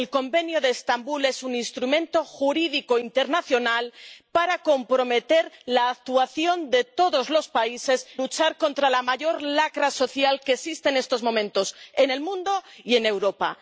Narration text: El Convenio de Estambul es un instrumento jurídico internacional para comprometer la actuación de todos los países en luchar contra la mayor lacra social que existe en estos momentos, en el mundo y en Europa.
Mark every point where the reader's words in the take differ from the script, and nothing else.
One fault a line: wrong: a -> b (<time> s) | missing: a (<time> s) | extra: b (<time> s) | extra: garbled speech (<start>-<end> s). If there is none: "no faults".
missing: en (8.1 s)